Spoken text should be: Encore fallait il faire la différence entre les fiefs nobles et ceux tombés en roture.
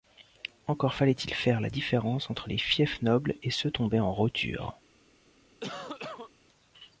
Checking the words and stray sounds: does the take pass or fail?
fail